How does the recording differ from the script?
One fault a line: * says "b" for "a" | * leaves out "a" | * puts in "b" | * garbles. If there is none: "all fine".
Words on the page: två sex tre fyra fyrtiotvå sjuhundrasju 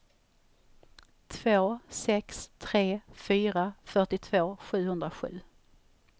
all fine